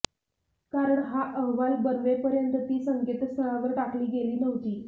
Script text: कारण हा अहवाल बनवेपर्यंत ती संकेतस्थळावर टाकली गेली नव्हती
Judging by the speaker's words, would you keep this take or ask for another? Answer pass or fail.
pass